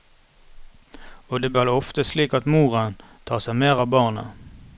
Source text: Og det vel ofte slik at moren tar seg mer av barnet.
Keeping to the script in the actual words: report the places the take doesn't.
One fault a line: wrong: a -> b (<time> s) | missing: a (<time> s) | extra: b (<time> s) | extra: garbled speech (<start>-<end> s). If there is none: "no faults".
no faults